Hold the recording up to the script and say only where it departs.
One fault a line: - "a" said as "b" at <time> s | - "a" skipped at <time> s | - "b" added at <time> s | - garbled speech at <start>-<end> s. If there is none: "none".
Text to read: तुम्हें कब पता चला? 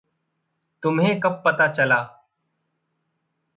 none